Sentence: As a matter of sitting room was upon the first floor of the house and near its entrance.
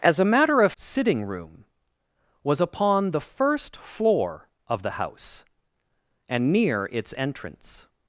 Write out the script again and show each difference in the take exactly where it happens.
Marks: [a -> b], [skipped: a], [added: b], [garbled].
As a matter of sitting room was upon the first floor of the house and near its entrance.